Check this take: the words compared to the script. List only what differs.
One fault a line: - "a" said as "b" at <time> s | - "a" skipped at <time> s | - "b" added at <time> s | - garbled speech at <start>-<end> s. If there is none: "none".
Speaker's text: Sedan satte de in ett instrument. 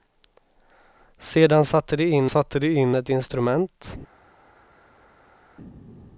- "satte de in" added at 2.3 s